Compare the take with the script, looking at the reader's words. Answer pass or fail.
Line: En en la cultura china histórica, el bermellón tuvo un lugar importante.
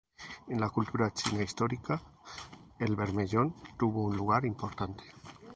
fail